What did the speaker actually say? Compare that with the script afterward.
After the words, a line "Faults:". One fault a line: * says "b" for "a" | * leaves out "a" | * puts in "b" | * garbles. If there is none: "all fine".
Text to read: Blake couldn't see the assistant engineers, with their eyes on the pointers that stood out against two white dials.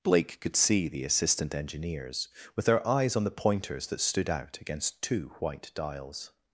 Blake could see the assistant engineers, with their eyes on the pointers that stood out against two white dials.
Faults:
* says "could" for "couldn't"